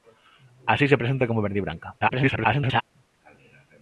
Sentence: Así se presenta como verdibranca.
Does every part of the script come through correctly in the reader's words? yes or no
no